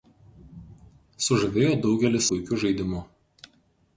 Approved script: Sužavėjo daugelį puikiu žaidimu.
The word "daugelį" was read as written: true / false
true